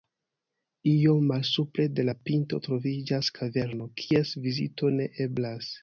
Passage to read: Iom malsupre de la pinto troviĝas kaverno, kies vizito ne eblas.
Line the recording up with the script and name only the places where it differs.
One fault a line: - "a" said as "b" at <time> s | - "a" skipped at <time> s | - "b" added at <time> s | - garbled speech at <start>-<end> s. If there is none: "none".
none